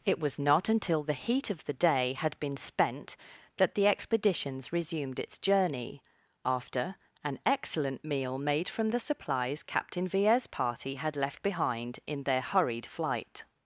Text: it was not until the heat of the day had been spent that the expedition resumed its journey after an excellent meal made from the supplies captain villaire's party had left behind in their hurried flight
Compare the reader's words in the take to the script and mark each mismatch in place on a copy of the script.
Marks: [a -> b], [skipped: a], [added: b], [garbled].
it was not until the heat of the day had been spent that the [expedition -> expeditions] resumed its journey after an excellent meal made from the supplies captain villaire's party had left behind in their hurried flight